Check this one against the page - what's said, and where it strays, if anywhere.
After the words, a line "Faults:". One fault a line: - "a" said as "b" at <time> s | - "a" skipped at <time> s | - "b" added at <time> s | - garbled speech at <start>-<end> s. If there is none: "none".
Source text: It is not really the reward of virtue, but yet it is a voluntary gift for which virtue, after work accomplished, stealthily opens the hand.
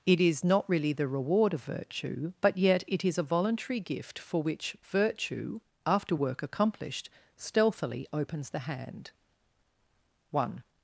It is not really the reward of virtue, but yet it is a voluntary gift for which virtue, after work accomplished, stealthily opens the hand. One
Faults:
- "One" added at 10.3 s